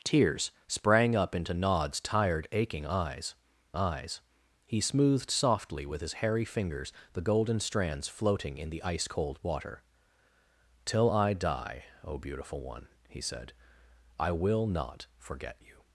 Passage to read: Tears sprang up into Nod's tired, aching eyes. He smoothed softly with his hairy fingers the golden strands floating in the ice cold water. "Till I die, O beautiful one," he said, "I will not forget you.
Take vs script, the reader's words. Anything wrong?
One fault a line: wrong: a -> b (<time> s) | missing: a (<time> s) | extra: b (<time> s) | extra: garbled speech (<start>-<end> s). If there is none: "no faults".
extra: eyes (3.7 s)